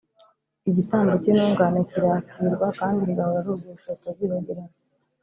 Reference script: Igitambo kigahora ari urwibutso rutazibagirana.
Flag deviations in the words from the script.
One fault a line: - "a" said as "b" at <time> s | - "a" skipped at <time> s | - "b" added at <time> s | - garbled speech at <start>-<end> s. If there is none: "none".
- "cy'intungane kirakirwa kandi" added at 1.2 s